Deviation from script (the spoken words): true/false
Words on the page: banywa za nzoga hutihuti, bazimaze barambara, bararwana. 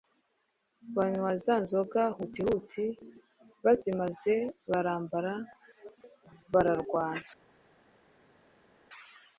false